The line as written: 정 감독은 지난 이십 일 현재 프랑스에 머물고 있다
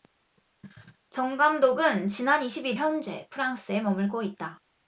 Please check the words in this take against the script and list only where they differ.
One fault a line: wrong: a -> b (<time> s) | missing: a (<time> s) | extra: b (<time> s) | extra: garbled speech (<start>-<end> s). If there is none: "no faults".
no faults